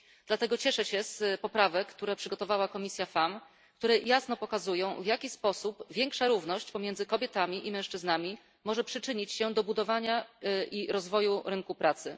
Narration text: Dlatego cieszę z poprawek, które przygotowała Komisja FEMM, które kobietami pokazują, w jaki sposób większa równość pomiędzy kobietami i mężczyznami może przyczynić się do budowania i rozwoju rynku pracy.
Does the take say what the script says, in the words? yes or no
no